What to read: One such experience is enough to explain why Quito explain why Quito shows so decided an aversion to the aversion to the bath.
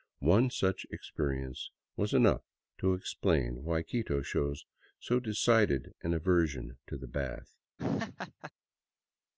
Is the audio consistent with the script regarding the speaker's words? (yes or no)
no